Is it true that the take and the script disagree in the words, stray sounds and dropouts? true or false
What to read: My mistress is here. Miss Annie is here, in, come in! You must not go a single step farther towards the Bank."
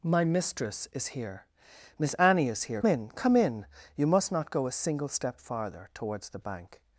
false